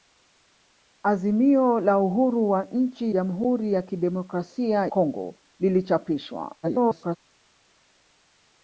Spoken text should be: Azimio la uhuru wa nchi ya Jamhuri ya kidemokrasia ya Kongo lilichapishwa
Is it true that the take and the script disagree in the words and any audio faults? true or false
true